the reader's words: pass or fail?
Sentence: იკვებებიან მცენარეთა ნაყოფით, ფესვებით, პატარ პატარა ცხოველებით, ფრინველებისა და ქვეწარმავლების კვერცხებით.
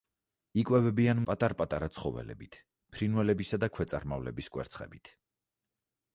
fail